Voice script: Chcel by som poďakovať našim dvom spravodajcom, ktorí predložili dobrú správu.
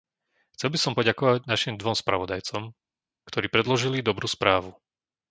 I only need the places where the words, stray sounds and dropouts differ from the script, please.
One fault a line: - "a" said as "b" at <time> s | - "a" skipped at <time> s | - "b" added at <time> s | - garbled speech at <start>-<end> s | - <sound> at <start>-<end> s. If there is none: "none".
none